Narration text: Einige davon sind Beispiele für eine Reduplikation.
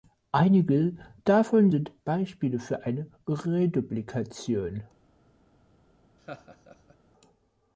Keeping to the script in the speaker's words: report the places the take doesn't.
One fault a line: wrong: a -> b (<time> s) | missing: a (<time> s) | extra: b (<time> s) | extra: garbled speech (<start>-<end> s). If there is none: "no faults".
no faults